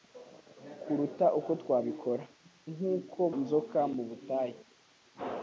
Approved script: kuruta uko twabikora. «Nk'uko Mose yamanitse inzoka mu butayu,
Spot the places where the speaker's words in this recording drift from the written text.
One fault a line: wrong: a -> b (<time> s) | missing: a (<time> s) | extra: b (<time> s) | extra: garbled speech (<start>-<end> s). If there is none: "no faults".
missing: Mose yamanitse (3.2 s)